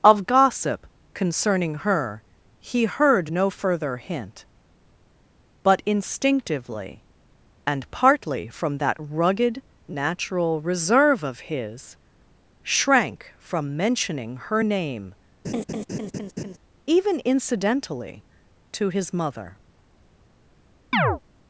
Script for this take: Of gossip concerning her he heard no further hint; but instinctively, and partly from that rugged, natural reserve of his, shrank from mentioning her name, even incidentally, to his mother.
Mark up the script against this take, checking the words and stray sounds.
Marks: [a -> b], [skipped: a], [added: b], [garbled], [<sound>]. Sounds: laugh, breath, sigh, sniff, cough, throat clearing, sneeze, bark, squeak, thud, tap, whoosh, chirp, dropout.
Of gossip concerning her he heard no further hint; but instinctively, and partly from that rugged, natural reserve of his, shrank from mentioning her name, [laugh] even incidentally, to his mother. [chirp]